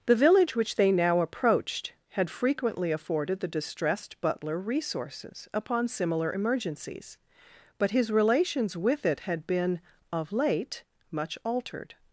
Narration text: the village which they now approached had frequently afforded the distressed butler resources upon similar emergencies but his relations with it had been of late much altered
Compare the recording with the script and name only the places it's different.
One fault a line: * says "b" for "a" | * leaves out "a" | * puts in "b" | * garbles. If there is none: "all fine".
all fine